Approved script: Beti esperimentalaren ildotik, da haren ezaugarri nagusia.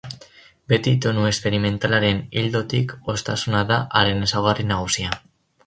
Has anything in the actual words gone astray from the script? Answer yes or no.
yes